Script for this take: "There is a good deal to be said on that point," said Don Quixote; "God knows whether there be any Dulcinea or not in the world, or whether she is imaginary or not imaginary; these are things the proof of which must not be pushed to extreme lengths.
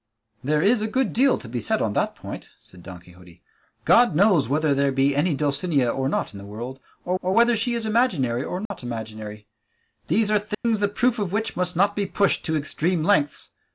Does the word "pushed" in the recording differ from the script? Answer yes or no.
no